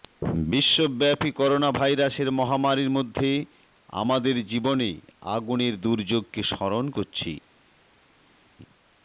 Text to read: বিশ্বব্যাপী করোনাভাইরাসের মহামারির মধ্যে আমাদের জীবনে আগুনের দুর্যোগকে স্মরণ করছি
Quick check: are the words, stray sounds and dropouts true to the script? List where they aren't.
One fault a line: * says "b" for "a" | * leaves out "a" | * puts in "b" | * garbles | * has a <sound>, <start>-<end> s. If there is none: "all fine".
all fine